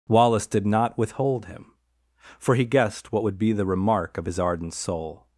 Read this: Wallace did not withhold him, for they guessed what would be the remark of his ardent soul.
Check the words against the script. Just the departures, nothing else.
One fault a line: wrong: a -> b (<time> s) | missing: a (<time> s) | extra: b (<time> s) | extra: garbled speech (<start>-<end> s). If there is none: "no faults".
wrong: they -> he (2.5 s)